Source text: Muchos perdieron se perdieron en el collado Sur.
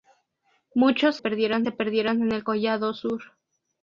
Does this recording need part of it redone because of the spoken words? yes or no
no